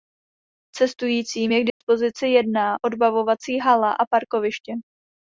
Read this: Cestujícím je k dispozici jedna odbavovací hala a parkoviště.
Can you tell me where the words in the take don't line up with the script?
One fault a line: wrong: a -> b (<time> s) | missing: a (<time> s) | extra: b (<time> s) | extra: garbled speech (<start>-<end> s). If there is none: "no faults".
no faults